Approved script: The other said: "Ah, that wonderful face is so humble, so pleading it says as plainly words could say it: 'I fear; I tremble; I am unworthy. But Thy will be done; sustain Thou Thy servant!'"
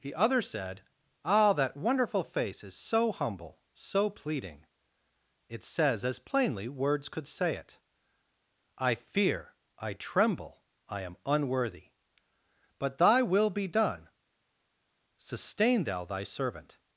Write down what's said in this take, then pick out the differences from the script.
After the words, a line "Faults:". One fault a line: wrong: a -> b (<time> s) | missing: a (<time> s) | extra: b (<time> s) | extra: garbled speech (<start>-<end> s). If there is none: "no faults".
The other said: "Ah, that wonderful face is so humble, so pleading it says as plainly words could say it: 'I fear; I tremble; I am unworthy. But Thy will be done; sustain Thou Thy servant!'"
Faults:
no faults